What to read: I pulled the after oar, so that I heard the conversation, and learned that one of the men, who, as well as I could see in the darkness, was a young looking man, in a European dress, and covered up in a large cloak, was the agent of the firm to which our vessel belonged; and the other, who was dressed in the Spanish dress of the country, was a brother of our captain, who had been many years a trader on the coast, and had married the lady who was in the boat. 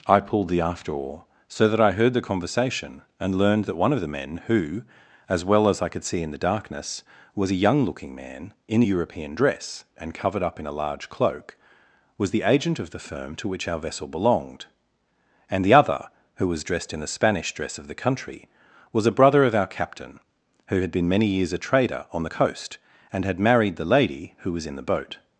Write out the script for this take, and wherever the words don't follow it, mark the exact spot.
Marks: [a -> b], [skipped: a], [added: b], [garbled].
I pulled the after oar, so that I heard the conversation, and learned that one of the men, who, as well as I could see in the darkness, was a young looking man, in a European dress, and covered up in a large cloak, was the agent of the firm to which our vessel belonged; and the other, who was dressed in the Spanish dress of the country, was a brother of our captain, who had been many years a trader on the coast, and had married the lady who was in the boat.